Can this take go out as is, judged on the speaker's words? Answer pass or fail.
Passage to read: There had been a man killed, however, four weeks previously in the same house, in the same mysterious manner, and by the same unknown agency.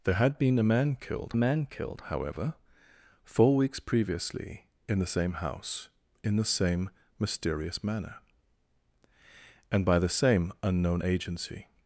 fail